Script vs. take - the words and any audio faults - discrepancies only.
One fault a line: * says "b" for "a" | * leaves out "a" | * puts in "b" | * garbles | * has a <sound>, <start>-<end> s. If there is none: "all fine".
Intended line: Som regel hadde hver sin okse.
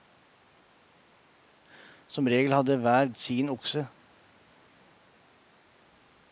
all fine